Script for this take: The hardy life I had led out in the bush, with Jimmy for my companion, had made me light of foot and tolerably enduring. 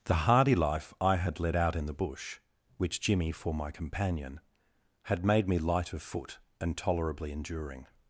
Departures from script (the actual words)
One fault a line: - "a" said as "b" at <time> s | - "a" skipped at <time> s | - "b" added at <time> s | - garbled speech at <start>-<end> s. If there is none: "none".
- "with" said as "which" at 2.8 s